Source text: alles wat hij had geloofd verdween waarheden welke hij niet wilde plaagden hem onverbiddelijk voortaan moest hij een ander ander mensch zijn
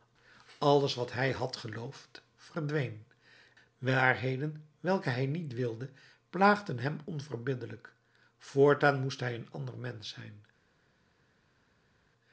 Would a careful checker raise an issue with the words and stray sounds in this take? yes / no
yes